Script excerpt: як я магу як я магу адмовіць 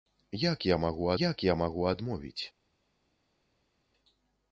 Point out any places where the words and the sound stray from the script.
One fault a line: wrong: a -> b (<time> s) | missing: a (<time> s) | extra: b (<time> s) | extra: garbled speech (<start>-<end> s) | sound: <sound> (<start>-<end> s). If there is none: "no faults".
no faults